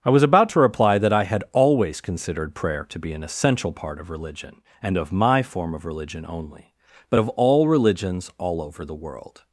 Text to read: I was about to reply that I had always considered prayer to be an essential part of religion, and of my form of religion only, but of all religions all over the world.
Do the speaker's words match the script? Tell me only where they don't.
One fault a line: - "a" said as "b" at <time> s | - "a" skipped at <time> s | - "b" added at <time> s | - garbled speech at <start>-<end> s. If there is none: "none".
none